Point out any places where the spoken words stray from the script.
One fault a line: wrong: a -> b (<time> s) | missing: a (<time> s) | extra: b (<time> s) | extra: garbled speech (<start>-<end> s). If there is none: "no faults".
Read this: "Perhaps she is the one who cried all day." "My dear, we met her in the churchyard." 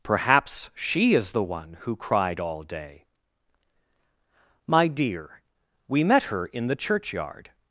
no faults